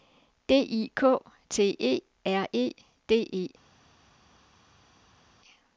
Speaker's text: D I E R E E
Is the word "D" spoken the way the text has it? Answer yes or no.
yes